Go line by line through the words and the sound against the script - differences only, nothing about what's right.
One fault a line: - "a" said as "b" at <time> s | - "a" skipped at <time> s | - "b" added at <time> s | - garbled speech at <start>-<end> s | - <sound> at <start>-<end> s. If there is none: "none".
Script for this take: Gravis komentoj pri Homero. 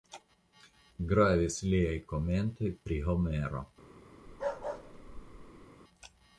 - "liaj" added at 1.8 s
- bark at 4.3-5.7 s